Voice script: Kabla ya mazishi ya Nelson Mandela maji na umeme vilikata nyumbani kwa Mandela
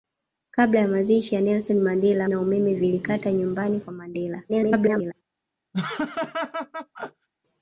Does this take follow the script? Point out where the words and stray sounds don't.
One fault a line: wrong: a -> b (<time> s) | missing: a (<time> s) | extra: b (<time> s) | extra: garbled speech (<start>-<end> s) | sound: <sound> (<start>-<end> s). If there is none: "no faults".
missing: maji (2.3 s)
extra: garbled speech (4.5-5.1 s)
sound: laugh (5.7-7.3 s)